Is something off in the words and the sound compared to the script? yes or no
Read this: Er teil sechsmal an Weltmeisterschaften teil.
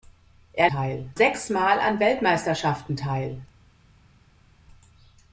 no